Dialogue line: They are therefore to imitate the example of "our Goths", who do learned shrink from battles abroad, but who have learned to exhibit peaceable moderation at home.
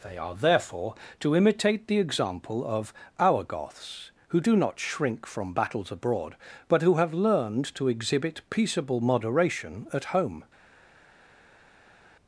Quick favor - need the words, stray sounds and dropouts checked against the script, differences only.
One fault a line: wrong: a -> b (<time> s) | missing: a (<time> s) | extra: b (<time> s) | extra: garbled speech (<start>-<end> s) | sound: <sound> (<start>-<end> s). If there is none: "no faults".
wrong: learned -> not (4.5 s)